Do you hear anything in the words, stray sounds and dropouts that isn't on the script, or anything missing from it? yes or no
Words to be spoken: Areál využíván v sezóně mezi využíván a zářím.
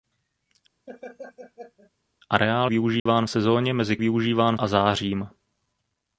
yes